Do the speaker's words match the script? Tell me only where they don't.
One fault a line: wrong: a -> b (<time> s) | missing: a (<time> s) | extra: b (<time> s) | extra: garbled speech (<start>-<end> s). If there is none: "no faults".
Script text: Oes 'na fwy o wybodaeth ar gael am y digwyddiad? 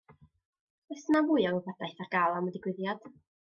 no faults